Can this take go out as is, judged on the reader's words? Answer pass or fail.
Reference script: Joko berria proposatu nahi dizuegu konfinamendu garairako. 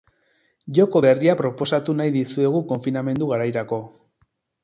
pass